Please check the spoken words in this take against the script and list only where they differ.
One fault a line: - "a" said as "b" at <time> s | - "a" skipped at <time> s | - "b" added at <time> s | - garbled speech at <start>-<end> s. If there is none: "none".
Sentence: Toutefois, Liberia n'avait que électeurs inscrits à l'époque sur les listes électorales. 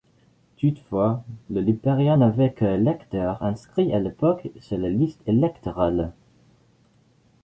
- "le" added at 1.5 s